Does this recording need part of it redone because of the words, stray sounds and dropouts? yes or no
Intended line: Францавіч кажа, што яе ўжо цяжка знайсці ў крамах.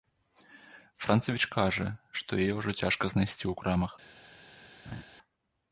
yes